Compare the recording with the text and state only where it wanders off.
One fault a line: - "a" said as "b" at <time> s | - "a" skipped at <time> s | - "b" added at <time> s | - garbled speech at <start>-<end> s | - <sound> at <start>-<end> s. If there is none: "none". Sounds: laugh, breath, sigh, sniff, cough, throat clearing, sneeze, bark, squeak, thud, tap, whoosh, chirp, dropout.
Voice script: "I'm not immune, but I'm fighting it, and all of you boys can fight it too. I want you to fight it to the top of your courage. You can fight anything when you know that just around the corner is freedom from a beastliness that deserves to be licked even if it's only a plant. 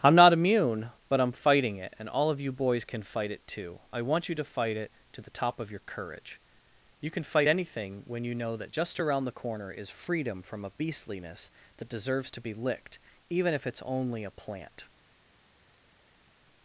none